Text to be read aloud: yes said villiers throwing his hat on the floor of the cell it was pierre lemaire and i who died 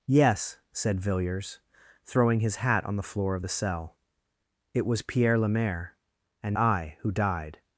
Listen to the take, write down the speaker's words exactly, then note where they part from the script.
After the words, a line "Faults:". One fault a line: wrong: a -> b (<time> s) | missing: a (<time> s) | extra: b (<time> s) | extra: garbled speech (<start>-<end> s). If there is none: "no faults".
yes said villiers throwing his hat on the floor of the cell it was pierre lemaire and i who died
Faults:
no faults